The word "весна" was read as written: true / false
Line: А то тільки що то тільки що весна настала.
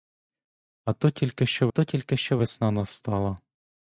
true